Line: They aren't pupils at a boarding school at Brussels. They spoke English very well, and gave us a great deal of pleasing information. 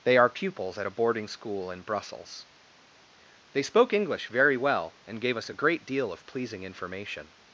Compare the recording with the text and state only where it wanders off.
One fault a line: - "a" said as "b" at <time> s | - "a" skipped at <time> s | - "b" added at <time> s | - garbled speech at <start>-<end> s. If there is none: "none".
- "aren't" said as "are" at 0.2 s
- "at" said as "in" at 1.7 s